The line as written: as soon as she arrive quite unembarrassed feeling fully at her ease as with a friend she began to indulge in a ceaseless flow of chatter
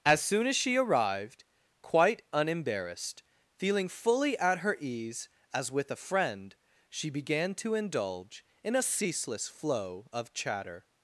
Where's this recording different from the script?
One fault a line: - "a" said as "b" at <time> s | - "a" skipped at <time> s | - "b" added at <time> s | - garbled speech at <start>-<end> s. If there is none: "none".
- "arrive" said as "arrived" at 0.8 s